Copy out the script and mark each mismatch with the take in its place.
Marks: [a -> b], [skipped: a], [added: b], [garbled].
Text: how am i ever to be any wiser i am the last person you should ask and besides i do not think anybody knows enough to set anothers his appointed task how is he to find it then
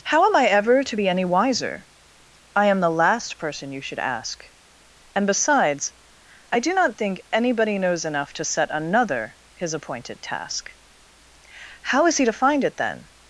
how am i ever to be any wiser i am the last person you should ask and besides i do not think anybody knows enough to set [anothers -> another] his appointed task how is he to find it then